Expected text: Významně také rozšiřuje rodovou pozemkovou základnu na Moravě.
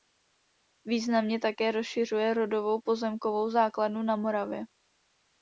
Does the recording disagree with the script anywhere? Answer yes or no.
no